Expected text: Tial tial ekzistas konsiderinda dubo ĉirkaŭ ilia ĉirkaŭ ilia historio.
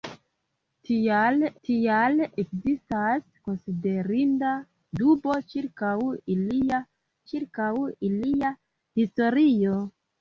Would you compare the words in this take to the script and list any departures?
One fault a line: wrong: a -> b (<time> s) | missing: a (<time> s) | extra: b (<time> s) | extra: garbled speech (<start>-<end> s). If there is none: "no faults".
no faults